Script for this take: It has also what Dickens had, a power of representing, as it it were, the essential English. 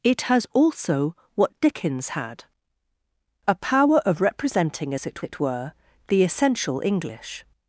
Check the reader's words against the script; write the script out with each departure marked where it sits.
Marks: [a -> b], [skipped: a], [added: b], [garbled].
It has also what Dickens had, a power of representing, as it it were, the essential English.